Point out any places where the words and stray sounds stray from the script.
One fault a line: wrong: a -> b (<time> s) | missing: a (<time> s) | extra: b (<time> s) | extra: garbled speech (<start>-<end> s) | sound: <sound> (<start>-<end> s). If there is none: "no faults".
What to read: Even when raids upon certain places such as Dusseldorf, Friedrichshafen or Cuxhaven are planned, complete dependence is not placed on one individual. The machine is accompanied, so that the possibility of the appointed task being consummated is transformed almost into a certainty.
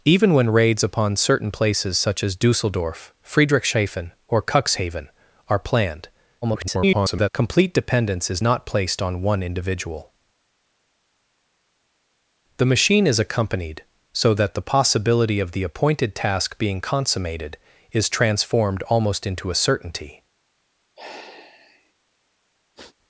extra: garbled speech (6.4-7.3 s)
sound: sigh (20.9-21.9 s)
sound: sniff (22.8-23.0 s)